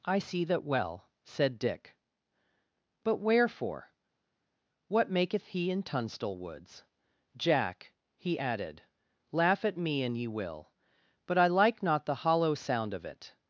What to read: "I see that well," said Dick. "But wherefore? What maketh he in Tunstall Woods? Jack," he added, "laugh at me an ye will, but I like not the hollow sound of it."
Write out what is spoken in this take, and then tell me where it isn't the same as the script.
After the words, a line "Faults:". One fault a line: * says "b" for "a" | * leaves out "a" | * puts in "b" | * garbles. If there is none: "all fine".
"I see that well," said Dick. "But wherefore? What maketh he in Tunstall Woods? Jack," he added, "laugh at me an ye will, but I like not the hollow sound of it."
Faults:
all fine